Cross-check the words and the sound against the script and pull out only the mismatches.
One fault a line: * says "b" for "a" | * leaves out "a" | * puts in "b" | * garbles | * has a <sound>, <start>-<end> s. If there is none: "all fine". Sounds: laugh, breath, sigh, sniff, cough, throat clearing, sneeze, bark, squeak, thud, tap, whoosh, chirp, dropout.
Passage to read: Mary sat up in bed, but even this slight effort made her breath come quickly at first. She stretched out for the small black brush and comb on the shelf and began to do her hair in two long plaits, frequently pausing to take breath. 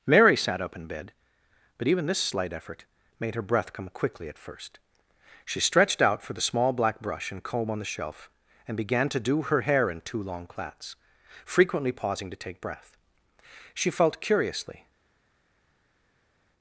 * puts in "She felt curiously"